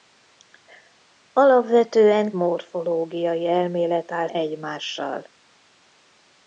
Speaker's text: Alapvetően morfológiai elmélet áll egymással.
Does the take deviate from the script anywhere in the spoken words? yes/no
no